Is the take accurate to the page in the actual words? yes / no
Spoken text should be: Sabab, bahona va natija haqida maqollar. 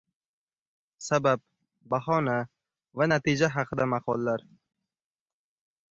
yes